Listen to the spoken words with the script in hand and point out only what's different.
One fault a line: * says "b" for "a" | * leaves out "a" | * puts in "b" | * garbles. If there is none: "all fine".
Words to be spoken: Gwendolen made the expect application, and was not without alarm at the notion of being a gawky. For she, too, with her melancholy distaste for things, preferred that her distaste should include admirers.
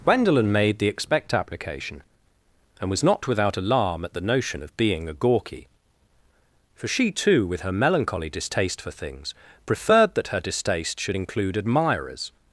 all fine